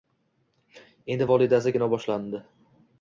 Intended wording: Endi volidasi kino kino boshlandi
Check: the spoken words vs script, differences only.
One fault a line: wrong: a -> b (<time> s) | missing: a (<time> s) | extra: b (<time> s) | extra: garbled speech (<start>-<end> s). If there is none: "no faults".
missing: kino (1.9 s)